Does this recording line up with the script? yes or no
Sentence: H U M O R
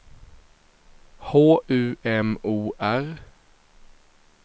yes